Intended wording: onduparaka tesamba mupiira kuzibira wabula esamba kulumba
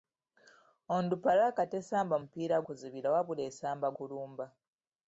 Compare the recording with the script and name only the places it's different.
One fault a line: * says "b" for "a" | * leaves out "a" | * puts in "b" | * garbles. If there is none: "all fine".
all fine